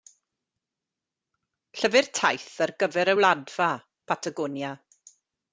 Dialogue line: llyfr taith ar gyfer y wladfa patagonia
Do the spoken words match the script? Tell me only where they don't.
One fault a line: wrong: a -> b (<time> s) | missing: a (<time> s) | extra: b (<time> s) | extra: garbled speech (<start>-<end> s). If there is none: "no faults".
no faults